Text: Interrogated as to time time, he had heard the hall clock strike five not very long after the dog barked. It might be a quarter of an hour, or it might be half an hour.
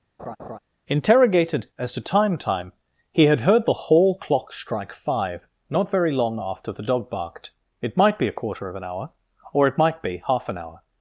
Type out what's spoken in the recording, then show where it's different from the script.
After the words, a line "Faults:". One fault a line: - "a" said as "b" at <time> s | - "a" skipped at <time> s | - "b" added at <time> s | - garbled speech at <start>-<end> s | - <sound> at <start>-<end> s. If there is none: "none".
Interrogated as to time time, he had heard the hall clock strike five not very long after the dog barked. It might be a quarter of an hour, or it might be half an hour.
Faults:
- laugh at 0.2-0.6 s